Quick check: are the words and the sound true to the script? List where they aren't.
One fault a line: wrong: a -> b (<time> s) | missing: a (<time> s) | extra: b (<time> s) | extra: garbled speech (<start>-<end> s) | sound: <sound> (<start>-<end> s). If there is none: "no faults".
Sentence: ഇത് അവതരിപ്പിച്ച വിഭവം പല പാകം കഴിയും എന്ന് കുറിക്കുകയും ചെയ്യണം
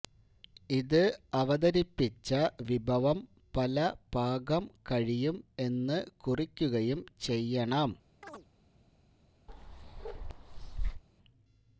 sound: chirp (8.2-8.5 s)
sound: bark (9.5-11.0 s)